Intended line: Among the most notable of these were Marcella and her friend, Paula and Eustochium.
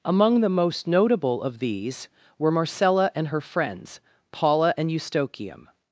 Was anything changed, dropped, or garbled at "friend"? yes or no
yes